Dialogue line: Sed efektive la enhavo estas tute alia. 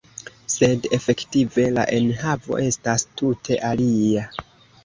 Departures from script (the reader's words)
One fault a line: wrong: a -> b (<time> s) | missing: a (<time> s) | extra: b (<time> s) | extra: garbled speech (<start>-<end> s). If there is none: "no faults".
no faults